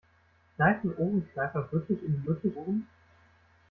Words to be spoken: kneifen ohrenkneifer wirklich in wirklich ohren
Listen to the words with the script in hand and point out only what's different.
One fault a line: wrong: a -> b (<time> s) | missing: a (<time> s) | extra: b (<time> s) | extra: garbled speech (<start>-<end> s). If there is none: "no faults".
no faults